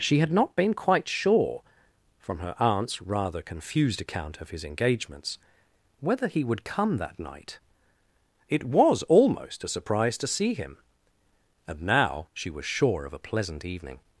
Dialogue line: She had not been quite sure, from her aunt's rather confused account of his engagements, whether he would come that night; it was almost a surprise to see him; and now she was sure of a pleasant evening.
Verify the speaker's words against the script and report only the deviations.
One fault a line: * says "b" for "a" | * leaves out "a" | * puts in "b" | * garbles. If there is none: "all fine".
all fine